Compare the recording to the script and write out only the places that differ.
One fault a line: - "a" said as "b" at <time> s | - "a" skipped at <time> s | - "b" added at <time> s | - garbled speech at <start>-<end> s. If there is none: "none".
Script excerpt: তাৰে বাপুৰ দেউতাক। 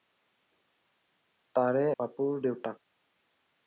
none